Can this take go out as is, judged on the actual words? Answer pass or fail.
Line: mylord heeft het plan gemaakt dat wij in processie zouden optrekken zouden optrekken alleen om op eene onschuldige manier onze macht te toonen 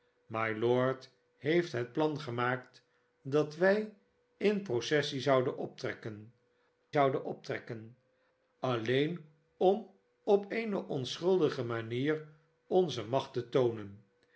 pass